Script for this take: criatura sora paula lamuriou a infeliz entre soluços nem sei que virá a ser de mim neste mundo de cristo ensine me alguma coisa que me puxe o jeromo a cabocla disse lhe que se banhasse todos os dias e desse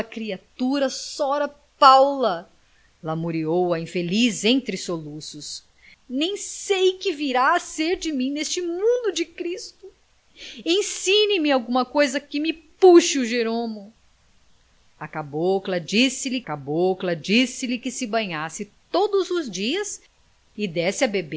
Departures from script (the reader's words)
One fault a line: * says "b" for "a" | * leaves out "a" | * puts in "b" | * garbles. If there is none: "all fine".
* puts in "cabocla disse lhe"